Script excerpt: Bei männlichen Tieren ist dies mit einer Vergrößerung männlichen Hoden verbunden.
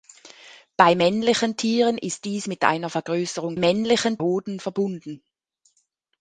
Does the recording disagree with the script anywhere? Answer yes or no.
no